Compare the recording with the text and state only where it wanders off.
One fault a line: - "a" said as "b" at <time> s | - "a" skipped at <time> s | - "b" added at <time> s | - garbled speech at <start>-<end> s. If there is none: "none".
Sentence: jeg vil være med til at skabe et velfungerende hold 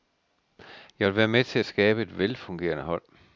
none